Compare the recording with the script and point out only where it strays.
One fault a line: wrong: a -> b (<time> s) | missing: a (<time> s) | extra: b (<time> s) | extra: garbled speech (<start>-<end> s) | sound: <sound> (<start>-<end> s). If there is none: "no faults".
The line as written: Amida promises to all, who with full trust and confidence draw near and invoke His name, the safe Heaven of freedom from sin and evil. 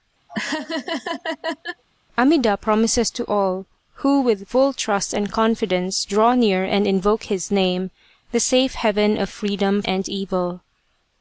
sound: laugh (0.3-1.8 s)
missing: from sin (9.8 s)